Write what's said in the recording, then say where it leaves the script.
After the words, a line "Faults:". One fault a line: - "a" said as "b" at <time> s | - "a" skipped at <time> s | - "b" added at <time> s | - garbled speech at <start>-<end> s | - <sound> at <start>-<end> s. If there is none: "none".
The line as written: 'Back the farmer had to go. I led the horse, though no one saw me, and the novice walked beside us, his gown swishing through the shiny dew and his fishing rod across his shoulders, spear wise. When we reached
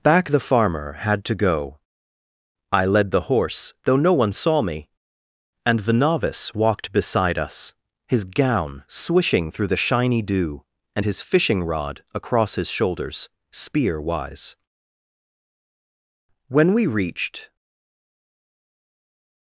'Back the farmer had to go. I led the horse, though no one saw me, and the novice walked beside us, his gown swishing through the shiny dew and his fishing rod across his shoulders, spear wise. When we reached
Faults:
none